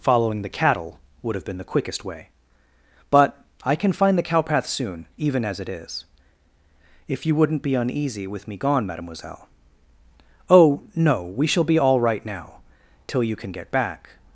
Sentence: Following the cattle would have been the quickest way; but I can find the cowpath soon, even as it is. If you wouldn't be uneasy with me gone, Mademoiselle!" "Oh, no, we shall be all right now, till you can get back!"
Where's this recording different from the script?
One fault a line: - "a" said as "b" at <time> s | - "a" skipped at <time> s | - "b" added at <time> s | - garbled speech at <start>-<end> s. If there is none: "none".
none